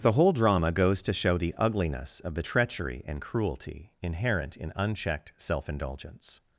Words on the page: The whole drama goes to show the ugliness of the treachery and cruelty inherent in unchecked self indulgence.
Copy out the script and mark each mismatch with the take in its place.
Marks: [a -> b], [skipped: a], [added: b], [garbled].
The whole drama goes to show the ugliness of the treachery and cruelty inherent in unchecked self indulgence.